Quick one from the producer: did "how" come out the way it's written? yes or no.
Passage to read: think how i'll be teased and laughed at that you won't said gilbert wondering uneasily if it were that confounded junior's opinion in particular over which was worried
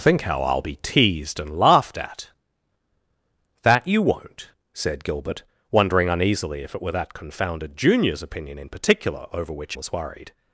yes